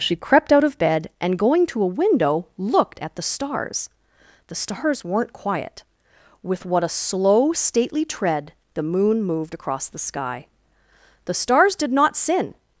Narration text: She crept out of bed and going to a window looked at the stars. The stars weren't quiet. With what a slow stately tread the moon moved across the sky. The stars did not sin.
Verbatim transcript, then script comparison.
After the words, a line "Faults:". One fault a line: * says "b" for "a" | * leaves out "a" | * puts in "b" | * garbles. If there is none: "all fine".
She crept out of bed and going to a window looked at the stars. The stars weren't quiet. With what a slow stately tread the moon moved across the sky. The stars did not sin.
Faults:
all fine